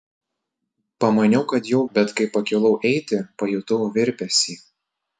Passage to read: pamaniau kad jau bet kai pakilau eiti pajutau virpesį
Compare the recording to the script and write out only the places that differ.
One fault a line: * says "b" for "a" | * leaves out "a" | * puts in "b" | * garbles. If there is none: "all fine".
all fine